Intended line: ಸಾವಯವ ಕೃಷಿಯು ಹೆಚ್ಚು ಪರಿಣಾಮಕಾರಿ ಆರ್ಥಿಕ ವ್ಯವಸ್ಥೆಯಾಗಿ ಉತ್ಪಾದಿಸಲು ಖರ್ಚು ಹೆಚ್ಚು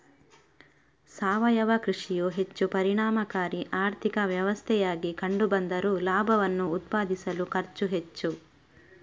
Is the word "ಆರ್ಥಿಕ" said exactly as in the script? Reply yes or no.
yes